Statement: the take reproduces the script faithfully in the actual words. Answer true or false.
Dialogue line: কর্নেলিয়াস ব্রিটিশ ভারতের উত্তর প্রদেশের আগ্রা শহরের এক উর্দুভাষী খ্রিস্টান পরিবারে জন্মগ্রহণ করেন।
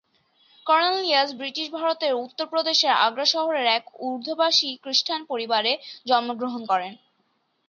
true